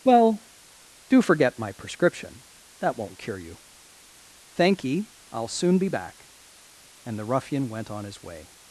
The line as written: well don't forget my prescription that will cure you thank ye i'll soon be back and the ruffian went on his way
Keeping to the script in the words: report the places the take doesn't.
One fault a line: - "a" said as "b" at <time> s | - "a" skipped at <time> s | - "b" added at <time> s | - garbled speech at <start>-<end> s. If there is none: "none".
- "don't" said as "do" at 1.1 s
- "will" said as "won't" at 3.0 s